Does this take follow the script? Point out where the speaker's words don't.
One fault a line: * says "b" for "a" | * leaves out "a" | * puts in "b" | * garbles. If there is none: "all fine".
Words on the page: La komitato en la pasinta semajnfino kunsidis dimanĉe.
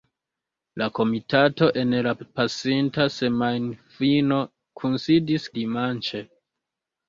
all fine